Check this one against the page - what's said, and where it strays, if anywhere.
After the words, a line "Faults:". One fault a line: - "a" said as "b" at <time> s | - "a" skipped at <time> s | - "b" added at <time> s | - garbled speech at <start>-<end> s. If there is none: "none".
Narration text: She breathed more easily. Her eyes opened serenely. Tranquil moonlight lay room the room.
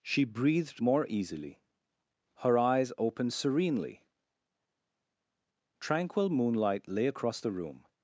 She breathed more easily. Her eyes opened serenely. Tranquil moonlight lay across the room.
Faults:
- "room" said as "across" at 7.1 s